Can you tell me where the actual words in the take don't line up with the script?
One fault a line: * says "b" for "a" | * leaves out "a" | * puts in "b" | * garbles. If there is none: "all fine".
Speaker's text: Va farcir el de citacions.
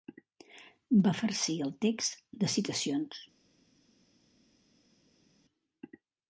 * puts in "text"